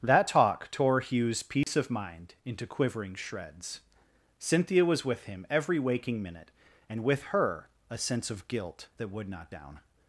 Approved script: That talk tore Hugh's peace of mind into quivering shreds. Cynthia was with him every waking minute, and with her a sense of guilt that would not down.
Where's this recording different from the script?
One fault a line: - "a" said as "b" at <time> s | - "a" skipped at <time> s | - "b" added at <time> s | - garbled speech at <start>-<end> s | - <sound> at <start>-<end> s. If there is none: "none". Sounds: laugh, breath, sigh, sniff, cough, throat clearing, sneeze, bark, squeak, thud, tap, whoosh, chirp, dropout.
- dropout at 1.6-1.7 s